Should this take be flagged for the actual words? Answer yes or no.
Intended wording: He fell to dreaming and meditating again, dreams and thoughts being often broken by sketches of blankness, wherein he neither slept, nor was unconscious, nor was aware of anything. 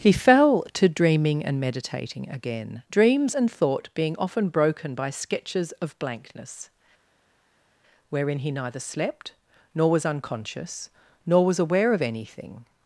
yes